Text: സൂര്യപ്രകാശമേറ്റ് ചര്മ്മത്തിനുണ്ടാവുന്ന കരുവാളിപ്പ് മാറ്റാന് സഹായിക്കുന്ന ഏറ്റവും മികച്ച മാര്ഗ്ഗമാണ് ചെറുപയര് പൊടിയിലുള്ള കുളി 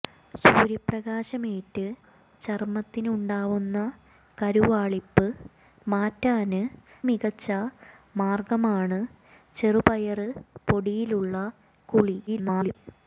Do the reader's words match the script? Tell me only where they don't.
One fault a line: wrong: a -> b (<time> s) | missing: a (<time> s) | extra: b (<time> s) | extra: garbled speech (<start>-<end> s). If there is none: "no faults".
missing: സഹായിക്കുന്ന ഏറ്റവും (6.6 s)
extra: garbled speech (12.3-12.8 s)